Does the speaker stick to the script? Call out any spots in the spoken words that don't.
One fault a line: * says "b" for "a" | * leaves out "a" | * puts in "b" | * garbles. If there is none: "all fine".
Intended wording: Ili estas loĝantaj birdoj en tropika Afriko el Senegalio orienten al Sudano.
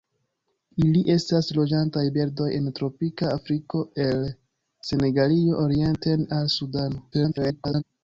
* garbles